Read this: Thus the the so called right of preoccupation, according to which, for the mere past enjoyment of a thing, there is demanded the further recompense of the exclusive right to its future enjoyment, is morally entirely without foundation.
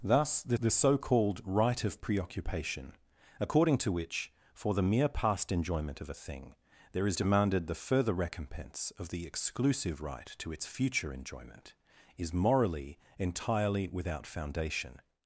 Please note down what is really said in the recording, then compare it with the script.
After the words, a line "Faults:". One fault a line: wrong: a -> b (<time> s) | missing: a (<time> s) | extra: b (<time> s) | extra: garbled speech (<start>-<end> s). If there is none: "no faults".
Thus the the so called right of preoccupation, according to which, for the mere past enjoyment of a thing, there is demanded the further recompense of the exclusive right to its future enjoyment, is morally entirely without foundation.
Faults:
no faults